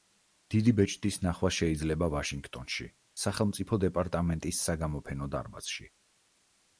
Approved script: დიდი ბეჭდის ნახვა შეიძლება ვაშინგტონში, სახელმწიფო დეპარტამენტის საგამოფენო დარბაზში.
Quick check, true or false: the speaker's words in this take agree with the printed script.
true